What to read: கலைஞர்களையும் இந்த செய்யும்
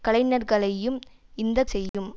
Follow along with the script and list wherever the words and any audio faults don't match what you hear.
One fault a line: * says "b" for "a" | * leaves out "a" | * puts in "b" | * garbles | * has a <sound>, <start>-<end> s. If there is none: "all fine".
* has a dropout, 1.9-1.9 s